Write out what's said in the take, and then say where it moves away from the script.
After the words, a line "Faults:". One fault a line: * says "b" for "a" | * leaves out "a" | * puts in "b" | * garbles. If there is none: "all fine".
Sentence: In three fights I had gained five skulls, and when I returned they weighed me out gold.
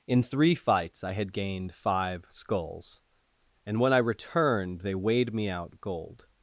In three fights I had gained five skulls, and when I returned they weighed me out gold.
Faults:
all fine